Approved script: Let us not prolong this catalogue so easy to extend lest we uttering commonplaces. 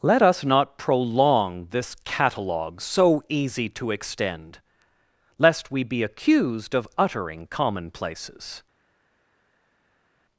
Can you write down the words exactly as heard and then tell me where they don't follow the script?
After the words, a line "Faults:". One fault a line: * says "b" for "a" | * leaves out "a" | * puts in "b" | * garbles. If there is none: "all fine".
Let us not prolong this catalogue so easy to extend lest we be accused of uttering commonplaces.
Faults:
* puts in "be accused of"